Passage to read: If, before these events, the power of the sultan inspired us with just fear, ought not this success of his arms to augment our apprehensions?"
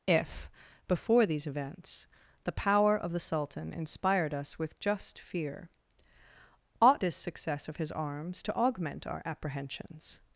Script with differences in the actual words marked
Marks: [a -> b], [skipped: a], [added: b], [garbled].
If, before these events, the power of the sultan inspired us with just fear, ought [skipped: not] this success of his arms to augment our apprehensions?"